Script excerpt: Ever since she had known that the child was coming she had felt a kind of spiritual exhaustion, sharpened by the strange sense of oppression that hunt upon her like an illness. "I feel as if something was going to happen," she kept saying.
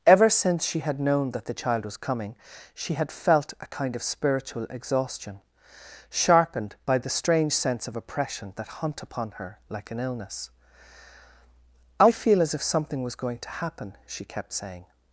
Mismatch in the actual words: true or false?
false